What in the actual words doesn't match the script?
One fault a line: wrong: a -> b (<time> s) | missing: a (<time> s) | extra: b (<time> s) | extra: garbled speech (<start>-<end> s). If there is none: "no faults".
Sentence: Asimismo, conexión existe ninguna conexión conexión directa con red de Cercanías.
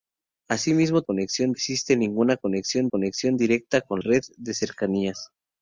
no faults